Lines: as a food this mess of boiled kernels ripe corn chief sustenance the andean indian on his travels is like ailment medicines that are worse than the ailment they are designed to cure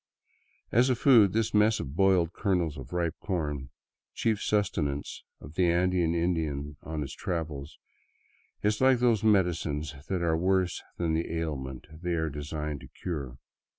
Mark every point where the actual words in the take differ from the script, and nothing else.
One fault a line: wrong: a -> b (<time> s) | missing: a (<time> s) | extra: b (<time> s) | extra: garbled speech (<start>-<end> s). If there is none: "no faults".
extra: of (2.8 s)
extra: of (5.4 s)
wrong: ailment -> those (9.0 s)